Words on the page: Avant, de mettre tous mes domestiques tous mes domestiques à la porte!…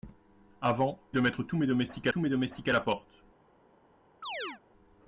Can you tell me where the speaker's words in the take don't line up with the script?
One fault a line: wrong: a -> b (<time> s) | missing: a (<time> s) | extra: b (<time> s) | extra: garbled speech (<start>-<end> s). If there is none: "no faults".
no faults